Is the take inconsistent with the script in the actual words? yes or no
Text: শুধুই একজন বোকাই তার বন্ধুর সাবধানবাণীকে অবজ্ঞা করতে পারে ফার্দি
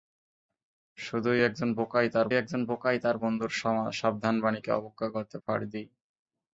yes